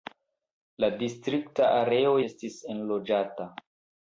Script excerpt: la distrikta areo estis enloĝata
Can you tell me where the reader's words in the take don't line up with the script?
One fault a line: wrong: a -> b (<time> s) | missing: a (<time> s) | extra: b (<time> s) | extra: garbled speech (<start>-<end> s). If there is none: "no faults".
no faults